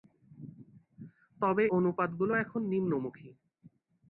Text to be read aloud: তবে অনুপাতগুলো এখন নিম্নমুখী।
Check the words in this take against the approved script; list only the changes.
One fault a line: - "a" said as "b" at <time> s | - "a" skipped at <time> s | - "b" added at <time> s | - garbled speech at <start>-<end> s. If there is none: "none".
none